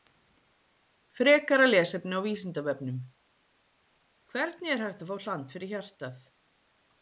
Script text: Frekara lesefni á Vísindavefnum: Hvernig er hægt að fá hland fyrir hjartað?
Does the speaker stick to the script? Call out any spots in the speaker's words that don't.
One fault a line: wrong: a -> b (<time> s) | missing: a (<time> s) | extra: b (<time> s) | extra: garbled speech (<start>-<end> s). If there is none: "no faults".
no faults